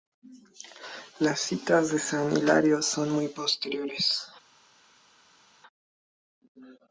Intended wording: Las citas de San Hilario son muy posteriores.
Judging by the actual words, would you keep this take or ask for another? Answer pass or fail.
pass